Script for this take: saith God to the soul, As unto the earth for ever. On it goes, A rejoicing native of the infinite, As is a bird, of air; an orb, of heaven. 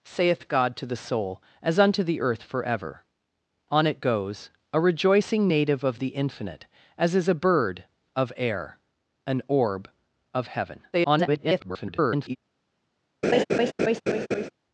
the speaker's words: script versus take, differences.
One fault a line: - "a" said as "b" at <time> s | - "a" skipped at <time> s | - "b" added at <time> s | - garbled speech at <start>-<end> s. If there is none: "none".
- garbled speech at 10.9-12.4 s